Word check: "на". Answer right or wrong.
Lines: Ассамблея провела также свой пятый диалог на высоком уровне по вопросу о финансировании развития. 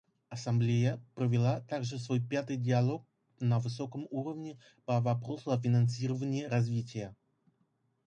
right